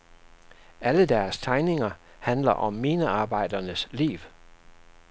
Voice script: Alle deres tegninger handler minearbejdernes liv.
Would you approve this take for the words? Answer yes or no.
no